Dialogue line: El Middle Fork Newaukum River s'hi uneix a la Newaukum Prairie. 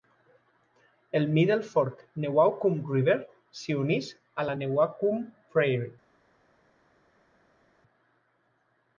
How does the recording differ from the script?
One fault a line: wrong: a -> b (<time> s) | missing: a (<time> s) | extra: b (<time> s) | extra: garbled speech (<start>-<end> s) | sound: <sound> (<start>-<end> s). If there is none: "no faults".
no faults